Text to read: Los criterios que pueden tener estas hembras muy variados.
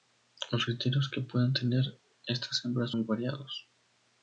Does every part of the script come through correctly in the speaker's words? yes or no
yes